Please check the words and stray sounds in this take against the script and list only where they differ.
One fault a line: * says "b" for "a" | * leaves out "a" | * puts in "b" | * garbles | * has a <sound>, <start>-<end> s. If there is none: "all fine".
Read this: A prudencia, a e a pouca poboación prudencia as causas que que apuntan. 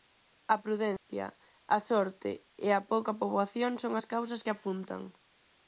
* has a dropout, 1.0-1.1 s
* puts in "sorte"
* says "son" for "prudencia"
* leaves out "que"